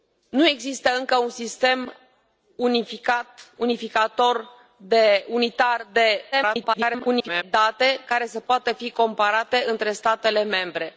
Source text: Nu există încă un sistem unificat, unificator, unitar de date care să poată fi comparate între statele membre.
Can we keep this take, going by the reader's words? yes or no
no